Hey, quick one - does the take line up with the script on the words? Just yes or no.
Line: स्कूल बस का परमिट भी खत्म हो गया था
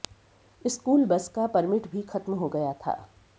yes